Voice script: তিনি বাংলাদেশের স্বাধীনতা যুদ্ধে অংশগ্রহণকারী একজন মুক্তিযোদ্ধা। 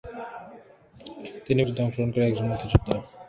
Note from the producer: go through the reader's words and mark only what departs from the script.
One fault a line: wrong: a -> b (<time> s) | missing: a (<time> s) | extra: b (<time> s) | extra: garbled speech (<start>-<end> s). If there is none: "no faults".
missing: বাংলাদেশের স্বাধীনতা (1.6 s)